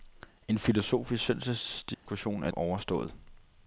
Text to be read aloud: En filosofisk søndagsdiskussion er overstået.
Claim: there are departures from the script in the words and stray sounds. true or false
true